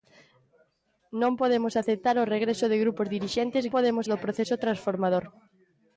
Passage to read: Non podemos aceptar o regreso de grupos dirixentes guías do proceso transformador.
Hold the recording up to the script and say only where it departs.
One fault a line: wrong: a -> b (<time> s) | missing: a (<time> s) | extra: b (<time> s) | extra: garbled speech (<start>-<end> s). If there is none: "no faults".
wrong: guías -> podemos (3.7 s)